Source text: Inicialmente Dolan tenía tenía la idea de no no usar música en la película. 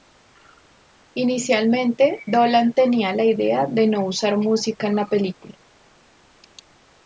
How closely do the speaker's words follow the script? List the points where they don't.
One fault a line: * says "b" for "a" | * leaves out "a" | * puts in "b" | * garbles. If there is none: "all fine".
* leaves out "tenía"
* leaves out "no"